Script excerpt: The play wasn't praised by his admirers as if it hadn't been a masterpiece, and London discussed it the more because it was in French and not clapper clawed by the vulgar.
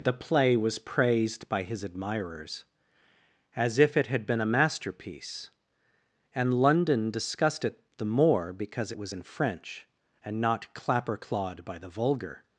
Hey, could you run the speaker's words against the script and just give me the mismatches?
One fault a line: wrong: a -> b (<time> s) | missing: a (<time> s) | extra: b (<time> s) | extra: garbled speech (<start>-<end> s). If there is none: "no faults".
wrong: wasn't -> was (0.6 s)
wrong: hadn't -> had (4.1 s)